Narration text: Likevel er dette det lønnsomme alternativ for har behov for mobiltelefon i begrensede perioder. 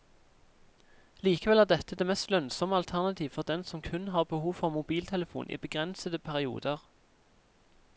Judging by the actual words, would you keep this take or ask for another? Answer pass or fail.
fail